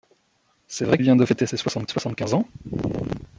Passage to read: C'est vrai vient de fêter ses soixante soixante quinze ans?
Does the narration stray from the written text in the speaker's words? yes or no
no